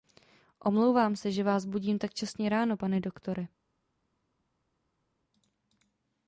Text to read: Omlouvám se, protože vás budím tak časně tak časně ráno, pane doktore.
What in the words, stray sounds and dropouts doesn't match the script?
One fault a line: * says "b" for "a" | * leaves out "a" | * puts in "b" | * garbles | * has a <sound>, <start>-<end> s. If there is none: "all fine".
* says "že" for "protože"
* leaves out "tak časně"